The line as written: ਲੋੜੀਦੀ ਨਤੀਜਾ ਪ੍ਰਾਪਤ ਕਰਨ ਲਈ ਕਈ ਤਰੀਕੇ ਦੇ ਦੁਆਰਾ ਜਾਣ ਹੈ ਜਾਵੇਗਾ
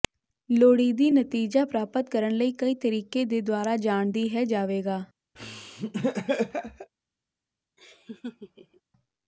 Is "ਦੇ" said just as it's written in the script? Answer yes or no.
yes